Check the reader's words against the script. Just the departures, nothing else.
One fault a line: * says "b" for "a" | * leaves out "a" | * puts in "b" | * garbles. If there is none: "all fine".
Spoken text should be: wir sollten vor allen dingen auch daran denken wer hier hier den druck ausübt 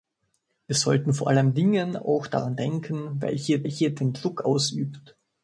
all fine